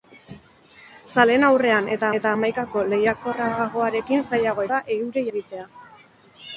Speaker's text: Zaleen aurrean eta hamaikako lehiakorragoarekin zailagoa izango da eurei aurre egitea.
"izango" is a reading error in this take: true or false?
true